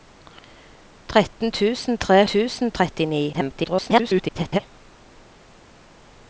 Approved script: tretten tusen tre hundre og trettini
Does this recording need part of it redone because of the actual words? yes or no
yes